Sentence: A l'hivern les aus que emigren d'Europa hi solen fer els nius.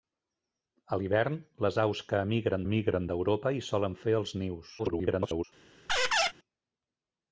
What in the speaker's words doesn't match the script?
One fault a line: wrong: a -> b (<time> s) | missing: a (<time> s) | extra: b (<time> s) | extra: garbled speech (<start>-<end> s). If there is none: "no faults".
extra: emigren (2.7 s)
extra: garbled speech (4.8-5.4 s)